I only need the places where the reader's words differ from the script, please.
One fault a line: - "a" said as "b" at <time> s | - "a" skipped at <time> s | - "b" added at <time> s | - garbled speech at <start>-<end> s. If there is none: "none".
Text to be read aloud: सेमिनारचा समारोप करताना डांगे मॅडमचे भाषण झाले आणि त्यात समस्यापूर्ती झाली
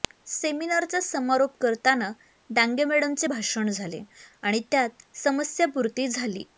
none